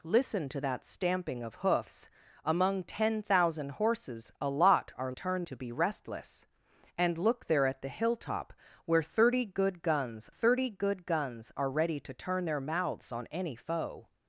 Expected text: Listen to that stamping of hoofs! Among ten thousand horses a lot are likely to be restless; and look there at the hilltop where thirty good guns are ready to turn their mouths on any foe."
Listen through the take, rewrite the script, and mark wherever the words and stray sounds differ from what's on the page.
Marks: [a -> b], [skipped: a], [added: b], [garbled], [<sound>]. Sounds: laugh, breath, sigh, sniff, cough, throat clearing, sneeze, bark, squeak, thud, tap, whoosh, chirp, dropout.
Listen to that stamping of hoofs! Among ten thousand horses a lot are [likely -> turn] to be restless; and look there at the hilltop where thirty good guns [added: thirty good guns] are ready to turn their mouths on any foe."